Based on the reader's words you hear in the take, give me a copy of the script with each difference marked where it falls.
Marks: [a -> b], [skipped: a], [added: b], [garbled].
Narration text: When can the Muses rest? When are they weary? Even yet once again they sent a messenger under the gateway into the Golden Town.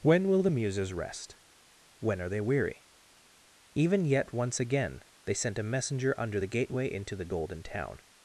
When [can -> will] the Muses rest? When are they weary? Even yet once again they sent a messenger under the gateway into the Golden Town.